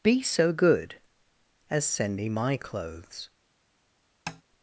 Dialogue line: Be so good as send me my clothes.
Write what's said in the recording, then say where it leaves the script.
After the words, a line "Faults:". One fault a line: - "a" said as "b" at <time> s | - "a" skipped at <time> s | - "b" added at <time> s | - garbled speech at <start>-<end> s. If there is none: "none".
Be so good as send me my clothes.
Faults:
none